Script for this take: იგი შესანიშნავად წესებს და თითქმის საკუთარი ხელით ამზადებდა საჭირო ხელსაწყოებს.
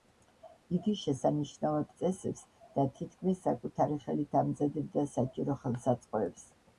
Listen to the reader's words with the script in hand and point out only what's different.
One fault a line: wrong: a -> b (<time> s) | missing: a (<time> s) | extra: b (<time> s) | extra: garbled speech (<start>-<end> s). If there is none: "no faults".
no faults